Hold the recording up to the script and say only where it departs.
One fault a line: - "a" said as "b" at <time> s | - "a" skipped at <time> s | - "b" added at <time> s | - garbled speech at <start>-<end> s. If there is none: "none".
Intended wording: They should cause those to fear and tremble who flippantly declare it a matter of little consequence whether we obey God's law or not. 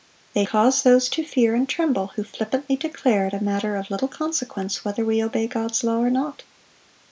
- "should" skipped at 0.5 s